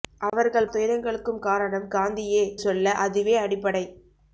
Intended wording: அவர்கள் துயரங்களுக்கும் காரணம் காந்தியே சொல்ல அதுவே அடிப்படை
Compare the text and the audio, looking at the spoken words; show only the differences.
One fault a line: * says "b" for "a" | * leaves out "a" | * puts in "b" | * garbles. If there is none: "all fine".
all fine